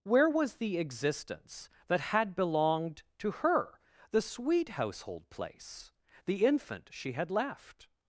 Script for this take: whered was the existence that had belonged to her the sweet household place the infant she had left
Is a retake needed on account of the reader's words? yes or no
yes